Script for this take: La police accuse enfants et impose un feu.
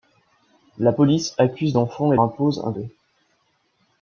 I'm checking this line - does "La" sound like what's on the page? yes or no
yes